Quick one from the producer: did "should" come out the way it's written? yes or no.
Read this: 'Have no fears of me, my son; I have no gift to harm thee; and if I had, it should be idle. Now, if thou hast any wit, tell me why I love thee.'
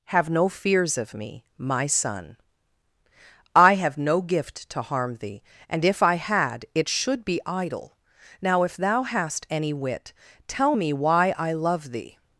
yes